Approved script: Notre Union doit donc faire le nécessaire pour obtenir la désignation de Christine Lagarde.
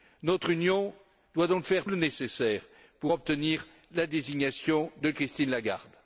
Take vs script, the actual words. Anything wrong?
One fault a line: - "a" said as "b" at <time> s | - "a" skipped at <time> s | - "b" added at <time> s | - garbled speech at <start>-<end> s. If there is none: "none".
none